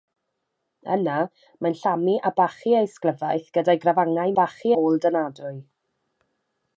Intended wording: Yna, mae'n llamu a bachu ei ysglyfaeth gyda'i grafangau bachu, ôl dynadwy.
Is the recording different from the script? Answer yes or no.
no